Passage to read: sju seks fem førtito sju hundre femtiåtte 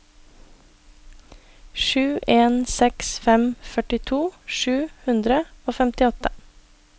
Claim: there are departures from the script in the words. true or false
true